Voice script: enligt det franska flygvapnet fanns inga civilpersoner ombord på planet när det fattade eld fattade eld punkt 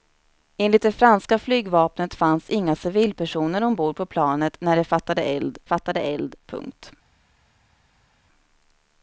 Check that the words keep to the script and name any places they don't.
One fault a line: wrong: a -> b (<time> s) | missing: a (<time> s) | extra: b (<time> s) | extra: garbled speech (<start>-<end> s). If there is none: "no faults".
no faults